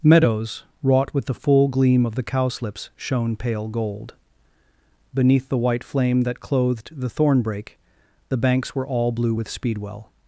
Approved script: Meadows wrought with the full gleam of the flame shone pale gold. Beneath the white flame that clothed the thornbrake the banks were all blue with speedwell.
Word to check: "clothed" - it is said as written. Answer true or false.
true